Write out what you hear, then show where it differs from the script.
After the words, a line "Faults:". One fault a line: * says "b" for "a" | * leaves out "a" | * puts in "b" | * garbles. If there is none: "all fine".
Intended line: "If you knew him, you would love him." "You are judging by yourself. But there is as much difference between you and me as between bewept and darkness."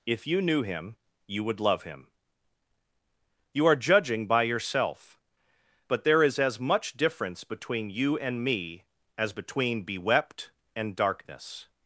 "If you knew him, you would love him." "You are judging by yourself. But there is as much difference between you and me as between bewept and darkness."
Faults:
all fine